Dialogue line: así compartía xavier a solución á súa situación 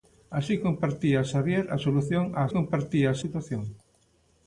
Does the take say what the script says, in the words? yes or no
no